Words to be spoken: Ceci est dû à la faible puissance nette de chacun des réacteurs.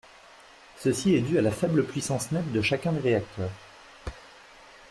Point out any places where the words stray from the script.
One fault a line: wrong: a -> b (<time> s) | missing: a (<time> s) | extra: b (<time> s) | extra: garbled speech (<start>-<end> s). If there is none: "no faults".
no faults